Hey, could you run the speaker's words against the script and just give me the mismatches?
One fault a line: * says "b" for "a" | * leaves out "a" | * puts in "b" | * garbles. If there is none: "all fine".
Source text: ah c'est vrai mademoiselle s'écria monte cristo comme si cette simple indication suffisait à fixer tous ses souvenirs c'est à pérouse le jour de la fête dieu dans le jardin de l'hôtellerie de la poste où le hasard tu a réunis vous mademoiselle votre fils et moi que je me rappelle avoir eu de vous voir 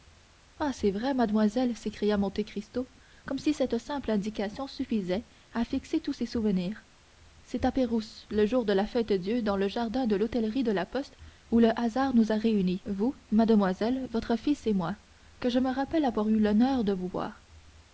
* says "nous" for "tu"
* puts in "l'honneur"